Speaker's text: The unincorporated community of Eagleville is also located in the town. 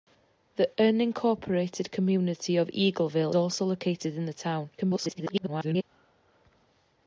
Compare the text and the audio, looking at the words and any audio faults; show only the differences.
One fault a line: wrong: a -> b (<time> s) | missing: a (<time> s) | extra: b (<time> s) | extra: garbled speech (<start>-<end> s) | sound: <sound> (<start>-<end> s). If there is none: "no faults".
missing: is (3.3 s)
extra: garbled speech (4.8-5.8 s)